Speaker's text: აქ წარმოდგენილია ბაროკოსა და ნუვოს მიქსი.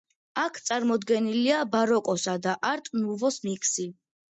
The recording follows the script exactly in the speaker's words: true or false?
false